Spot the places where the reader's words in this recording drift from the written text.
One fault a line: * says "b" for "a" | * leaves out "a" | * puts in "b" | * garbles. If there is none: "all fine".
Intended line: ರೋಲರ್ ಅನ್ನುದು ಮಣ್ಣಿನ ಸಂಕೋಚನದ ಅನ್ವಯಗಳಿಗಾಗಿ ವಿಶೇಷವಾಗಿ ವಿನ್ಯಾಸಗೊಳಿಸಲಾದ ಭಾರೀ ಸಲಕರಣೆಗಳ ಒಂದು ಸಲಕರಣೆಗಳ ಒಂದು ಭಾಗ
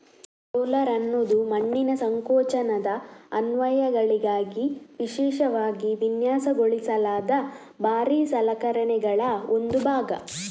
* leaves out "ಸಲಕರಣೆಗಳ ಒಂದು"